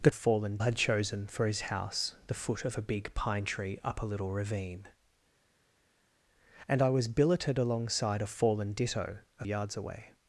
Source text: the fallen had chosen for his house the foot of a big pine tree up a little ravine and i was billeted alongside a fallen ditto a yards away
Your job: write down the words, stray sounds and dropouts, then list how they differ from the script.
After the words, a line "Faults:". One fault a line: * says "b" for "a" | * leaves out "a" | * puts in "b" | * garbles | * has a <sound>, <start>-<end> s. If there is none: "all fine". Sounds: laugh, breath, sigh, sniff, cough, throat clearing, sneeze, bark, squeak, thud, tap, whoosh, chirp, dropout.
the fallen had chosen for his house the foot of a big pine tree up a little ravine and i was billeted alongside a fallen ditto a yards away
Faults:
all fine